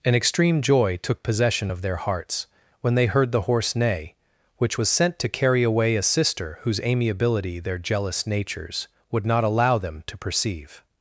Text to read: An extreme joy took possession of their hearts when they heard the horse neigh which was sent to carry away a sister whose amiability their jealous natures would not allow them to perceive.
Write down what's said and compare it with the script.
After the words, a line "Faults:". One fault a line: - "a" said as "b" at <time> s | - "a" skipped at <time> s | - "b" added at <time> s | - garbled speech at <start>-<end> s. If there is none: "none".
An extreme joy took possession of their hearts when they heard the horse neigh which was sent to carry away a sister whose amiability their jealous natures would not allow them to perceive.
Faults:
none